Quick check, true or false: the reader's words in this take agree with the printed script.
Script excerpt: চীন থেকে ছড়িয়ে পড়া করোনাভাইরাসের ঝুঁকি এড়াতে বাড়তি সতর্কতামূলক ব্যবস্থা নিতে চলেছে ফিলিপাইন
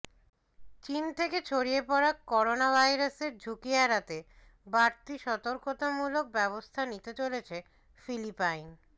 true